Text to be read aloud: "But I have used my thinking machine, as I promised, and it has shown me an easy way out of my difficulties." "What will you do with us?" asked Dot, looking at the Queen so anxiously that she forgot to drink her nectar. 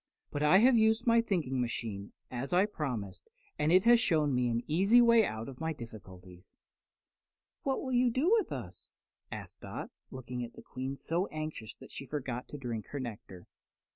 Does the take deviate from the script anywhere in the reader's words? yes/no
no